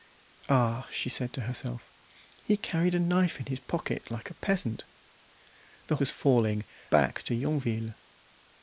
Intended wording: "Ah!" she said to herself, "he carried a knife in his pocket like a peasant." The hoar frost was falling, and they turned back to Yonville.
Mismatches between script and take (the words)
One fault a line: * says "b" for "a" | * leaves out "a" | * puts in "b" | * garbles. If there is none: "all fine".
* leaves out "hoar frost"
* leaves out "and they turned"